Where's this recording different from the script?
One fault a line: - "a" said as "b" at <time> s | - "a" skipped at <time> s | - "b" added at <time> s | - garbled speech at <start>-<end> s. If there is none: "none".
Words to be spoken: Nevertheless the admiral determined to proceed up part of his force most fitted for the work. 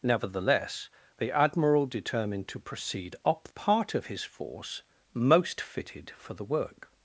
none